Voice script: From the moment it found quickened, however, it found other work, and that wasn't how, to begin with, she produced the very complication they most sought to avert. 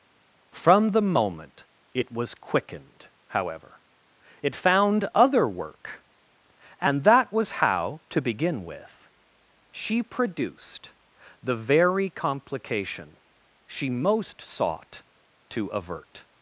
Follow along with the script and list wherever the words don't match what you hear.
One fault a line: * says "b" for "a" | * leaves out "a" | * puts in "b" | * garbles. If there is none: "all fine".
* says "was" for "found"
* says "was" for "wasn't"
* says "she" for "they"